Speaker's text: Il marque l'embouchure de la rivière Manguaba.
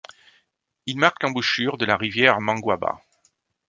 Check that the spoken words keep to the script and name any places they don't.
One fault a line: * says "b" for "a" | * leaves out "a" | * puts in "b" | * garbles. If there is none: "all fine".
all fine